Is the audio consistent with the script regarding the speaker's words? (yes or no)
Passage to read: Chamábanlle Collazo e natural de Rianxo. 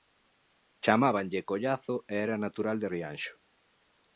no